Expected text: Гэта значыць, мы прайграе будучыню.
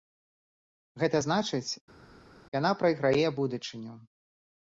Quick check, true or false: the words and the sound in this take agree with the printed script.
false